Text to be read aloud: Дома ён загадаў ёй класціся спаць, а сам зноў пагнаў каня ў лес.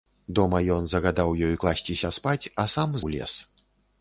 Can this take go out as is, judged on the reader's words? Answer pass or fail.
fail